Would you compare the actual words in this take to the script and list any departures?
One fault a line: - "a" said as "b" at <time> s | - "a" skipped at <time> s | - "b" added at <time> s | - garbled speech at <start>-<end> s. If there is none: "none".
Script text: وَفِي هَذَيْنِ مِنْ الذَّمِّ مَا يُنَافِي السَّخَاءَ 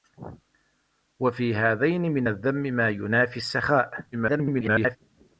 - garbled speech at 4.1-5.0 s